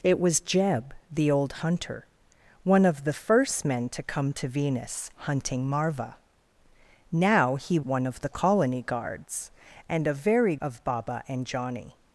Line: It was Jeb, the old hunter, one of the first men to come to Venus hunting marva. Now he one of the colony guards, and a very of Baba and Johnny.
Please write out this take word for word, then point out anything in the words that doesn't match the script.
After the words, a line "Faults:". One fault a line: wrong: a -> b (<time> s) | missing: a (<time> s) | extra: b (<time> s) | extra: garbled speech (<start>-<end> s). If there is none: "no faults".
It was Jeb, the old hunter, one of the first men to come to Venus hunting marva. Now he one of the colony guards, and a very of Baba and Johnny.
Faults:
no faults